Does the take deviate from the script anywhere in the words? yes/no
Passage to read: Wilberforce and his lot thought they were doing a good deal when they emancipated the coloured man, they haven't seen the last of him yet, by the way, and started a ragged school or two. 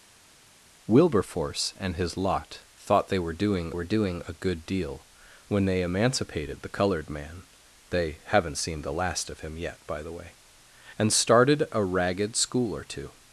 yes